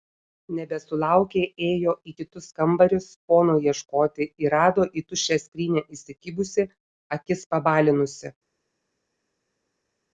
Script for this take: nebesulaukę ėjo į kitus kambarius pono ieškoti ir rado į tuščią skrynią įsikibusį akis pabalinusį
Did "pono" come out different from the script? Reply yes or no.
no